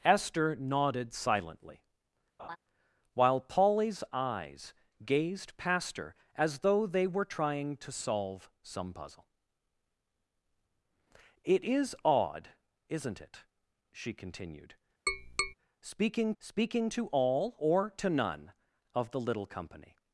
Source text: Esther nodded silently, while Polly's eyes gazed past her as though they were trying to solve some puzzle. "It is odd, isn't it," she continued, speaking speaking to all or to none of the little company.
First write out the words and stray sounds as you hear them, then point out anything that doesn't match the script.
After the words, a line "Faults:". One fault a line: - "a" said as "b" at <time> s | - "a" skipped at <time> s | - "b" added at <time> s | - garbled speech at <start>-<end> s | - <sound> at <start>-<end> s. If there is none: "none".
Esther nodded silently, while Polly's eyes gazed past her as though they were trying to solve some puzzle. "It is odd, isn't it," she continued, speaking speaking to all or to none of the little company.
Faults:
- laugh at 2.4-2.6 s
- tap at 15.1-15.5 s